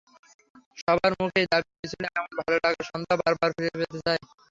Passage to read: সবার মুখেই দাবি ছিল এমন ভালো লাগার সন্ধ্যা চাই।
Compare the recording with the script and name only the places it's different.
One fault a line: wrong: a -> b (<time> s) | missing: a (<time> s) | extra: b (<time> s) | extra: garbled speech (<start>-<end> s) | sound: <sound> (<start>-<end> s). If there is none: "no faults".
extra: বারবার ফিরে পেতে (3.2 s)